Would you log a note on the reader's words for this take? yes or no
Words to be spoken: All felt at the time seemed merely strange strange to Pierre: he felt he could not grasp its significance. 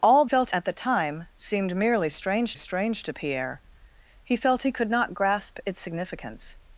no